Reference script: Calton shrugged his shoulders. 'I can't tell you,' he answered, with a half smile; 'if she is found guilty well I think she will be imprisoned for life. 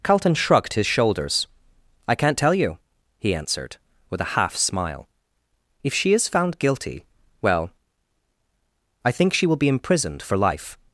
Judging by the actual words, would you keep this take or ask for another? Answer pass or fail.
pass